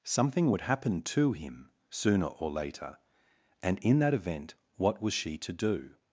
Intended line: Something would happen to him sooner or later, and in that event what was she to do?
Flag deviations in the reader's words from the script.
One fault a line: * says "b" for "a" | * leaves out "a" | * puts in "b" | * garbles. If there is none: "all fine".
all fine